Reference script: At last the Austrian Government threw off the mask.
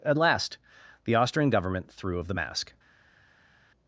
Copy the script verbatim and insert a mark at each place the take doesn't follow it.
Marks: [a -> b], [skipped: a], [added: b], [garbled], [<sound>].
At last the Austrian Government threw [off -> of] the mask.